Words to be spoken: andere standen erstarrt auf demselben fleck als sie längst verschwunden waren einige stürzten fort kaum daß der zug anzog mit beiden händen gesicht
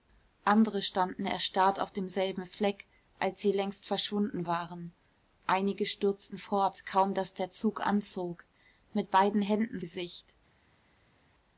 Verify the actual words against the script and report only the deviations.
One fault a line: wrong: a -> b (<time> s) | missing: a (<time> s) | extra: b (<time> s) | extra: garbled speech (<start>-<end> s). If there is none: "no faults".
no faults